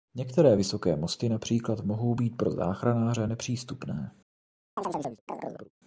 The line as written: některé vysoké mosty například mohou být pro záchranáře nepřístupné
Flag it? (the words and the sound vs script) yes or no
yes